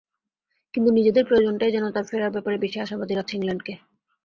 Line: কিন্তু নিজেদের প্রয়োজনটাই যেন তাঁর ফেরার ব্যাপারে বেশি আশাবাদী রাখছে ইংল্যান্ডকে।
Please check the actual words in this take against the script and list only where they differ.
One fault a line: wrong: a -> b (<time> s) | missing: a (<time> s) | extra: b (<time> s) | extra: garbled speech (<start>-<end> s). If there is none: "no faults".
no faults